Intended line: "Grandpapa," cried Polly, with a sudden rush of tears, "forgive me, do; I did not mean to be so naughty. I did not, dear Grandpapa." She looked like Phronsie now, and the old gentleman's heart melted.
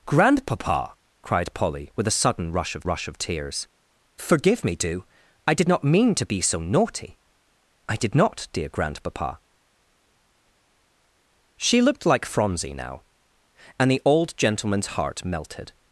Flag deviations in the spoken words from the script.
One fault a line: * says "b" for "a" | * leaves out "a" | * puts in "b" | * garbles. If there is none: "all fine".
* puts in "rush of"